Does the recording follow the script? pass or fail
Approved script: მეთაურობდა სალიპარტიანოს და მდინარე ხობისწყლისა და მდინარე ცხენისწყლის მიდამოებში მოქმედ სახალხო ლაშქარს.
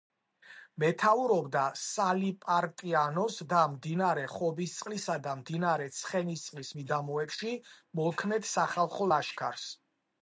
pass